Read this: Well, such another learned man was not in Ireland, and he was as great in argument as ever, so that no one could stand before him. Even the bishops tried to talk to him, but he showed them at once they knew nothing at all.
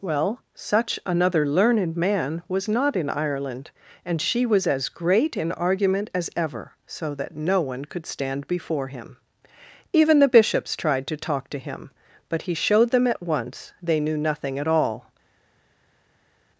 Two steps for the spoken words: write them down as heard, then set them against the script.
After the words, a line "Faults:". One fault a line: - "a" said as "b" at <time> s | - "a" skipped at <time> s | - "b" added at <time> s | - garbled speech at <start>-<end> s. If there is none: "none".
Well, such another learned man was not in Ireland, and she was as great in argument as ever, so that no one could stand before him. Even the bishops tried to talk to him, but he showed them at once they knew nothing at all.
Faults:
- "he" said as "she" at 4.2 s